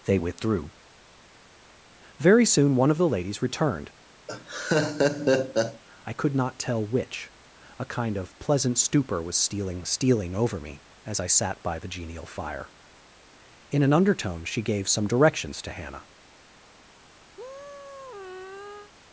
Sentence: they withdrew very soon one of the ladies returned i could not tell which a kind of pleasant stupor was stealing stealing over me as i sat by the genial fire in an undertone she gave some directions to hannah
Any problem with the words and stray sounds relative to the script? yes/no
yes